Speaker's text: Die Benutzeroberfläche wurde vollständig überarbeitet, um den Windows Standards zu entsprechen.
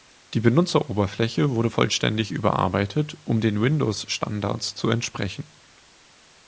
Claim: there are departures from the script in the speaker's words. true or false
false